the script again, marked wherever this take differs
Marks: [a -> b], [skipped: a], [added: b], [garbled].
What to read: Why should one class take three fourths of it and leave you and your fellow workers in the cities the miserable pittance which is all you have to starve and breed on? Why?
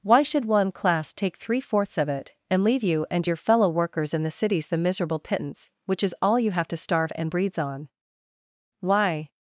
Why should one class take three fourths of it and leave you and your fellow workers in the cities the miserable pittance which is all you have to starve and [breed -> breeds] on? Why?